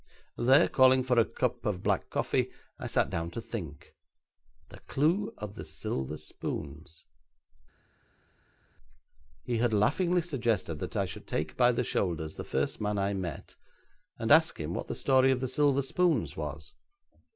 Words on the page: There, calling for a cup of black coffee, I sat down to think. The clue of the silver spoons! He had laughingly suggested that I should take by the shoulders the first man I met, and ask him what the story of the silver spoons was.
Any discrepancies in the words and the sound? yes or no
no